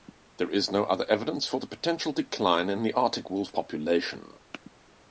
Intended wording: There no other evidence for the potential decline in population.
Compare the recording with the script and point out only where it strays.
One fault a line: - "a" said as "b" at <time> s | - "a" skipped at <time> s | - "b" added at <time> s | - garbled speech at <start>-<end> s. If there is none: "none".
- "is" added at 0.5 s
- "the Arctic wolf" added at 2.8 s